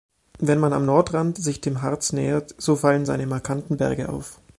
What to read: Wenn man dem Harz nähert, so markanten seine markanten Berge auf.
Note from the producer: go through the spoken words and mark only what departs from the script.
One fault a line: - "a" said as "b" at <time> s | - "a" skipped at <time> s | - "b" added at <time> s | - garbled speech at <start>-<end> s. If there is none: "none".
- "am Nordrand sich" added at 0.7 s
- "markanten" said as "fallen" at 2.8 s